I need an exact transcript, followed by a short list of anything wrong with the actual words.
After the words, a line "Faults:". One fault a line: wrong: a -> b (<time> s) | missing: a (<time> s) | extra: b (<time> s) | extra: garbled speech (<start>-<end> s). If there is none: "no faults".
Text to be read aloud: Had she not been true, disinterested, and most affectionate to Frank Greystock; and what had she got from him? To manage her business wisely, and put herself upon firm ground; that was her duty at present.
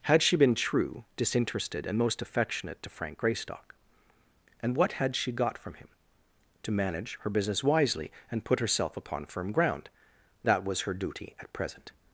Had she been true, disinterested, and most affectionate to Frank Greystock; and what had she got from him? To manage her business wisely, and put herself upon firm ground; that was her duty at present.
Faults:
missing: not (0.3 s)